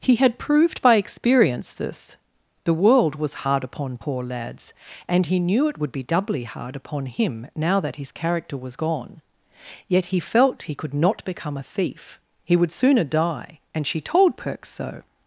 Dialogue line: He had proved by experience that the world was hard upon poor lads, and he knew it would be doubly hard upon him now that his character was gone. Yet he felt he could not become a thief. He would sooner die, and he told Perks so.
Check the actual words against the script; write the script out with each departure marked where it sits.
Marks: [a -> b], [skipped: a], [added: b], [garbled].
He had proved by experience [that -> this] the world was hard upon poor lads, and he knew it would be doubly hard upon him now that his character was gone. Yet he felt he could not become a thief. He would sooner die, and [he -> she] told Perks so.